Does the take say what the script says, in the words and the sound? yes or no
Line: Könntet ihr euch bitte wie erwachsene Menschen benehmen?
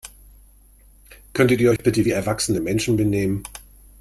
no